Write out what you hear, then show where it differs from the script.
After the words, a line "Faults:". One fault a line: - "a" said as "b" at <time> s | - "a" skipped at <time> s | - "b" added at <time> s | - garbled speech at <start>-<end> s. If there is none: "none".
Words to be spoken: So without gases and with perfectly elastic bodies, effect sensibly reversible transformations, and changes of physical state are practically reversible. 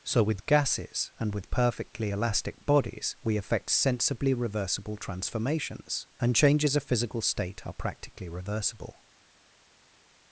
So with gases and with perfectly elastic bodies, we effect sensibly reversible transformations, and changes of physical state are practically reversible.
Faults:
- "without" said as "with" at 0.2 s
- "we" added at 3.2 s